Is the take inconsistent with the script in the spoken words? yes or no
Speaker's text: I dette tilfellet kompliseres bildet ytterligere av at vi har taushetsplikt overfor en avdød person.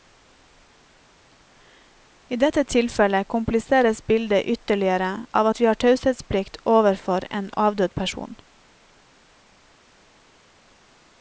no